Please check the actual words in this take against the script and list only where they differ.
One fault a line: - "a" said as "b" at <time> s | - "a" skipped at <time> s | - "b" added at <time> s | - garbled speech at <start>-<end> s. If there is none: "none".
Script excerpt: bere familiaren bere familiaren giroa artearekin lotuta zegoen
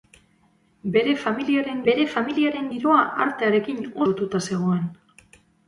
none